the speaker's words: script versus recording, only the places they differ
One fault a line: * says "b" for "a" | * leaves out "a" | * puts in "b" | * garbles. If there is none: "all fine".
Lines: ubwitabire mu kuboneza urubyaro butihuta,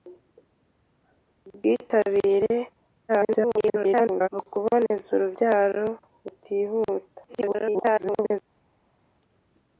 * garbles
* garbles